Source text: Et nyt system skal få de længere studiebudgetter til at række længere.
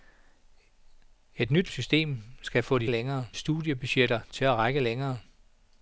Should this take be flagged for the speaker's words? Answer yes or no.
no